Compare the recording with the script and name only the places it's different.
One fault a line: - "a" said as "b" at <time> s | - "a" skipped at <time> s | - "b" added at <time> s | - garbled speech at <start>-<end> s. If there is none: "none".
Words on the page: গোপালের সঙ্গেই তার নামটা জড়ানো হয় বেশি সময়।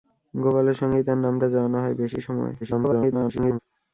- garbled speech at 2.6-3.6 s